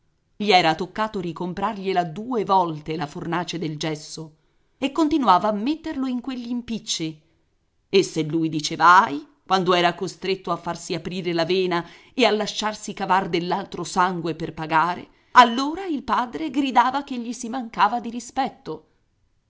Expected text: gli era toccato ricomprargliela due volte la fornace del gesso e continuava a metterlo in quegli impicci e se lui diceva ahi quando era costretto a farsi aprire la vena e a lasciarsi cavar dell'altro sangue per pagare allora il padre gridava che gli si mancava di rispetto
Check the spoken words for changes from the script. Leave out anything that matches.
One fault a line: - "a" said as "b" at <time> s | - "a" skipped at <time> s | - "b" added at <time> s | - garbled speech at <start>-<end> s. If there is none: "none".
none